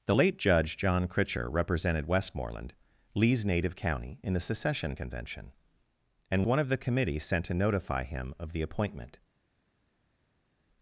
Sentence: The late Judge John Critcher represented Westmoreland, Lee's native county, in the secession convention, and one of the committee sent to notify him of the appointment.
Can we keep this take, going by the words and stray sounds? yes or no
yes